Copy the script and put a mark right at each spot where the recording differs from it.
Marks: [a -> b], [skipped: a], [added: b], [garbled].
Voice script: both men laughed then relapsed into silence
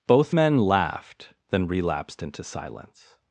both men laughed then relapsed into silence